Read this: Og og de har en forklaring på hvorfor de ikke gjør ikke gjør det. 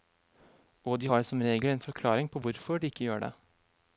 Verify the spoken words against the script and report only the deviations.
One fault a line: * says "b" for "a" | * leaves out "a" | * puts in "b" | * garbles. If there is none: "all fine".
* leaves out "og"
* puts in "som regel"
* leaves out "ikke gjør"